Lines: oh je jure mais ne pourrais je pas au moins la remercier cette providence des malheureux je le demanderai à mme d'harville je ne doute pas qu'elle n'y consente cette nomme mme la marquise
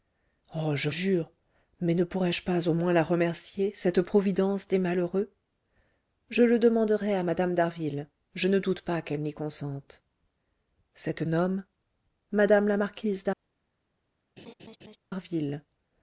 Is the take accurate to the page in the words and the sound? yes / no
no